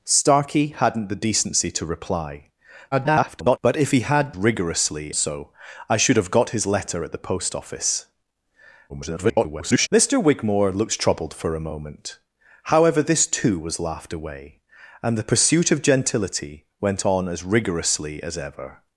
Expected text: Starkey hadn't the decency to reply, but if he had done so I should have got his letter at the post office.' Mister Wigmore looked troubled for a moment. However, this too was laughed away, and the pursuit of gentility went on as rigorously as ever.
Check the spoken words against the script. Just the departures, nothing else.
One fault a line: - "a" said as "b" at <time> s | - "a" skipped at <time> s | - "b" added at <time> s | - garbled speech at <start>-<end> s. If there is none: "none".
- garbled speech at 2.9-3.6 s
- "done" said as "rigorously" at 4.3 s
- garbled speech at 8.9-9.9 s